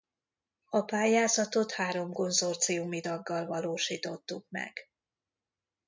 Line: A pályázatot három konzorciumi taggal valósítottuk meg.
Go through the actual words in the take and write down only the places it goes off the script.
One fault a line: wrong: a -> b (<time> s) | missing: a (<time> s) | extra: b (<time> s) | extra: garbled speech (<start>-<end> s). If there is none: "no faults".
no faults